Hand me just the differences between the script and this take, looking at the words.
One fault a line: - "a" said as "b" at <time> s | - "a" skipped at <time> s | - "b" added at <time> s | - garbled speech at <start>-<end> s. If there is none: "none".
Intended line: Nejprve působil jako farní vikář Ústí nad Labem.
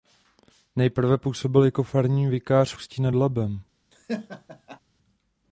none